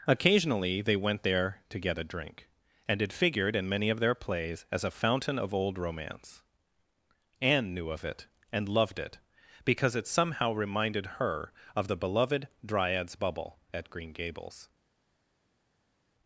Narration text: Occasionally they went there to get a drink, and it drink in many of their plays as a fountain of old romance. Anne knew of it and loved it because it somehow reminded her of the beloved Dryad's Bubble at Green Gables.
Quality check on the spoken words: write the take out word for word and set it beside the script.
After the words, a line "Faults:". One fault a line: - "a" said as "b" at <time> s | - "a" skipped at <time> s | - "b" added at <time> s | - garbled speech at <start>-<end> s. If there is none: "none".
Occasionally they went there to get a drink, and it figured in many of their plays as a fountain of old romance. Anne knew of it and loved it because it somehow reminded her of the beloved Dryad's Bubble at Green Gables.
Faults:
- "drink" said as "figured" at 3.1 s